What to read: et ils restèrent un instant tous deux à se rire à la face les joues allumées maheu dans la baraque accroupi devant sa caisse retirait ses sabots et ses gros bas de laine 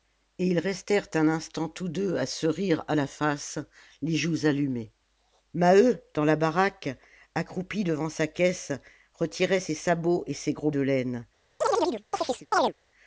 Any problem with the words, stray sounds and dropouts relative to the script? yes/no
yes